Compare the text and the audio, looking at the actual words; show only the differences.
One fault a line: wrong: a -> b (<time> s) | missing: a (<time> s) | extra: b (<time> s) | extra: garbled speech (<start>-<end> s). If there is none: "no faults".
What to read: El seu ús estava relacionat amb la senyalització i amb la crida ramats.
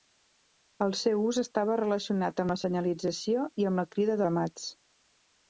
no faults